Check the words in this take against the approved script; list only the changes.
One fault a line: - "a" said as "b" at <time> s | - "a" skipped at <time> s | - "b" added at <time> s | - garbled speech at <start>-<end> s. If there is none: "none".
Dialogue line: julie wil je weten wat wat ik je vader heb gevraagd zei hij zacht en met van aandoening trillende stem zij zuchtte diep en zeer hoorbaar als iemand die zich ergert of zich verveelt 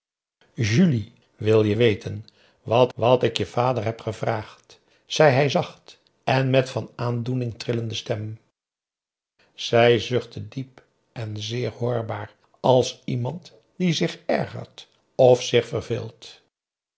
none